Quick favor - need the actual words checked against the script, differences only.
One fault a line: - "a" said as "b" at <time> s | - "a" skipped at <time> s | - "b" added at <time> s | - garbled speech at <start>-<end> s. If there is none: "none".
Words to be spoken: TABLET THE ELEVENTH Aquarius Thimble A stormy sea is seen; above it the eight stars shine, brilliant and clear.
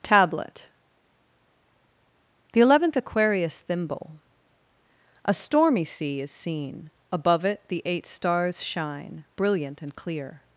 none